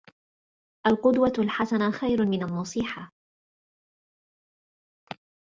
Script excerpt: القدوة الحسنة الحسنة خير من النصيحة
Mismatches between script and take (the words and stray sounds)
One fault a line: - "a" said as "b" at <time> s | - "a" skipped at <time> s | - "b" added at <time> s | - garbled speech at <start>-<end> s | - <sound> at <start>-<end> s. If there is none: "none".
- "الحسنة" skipped at 1.9 s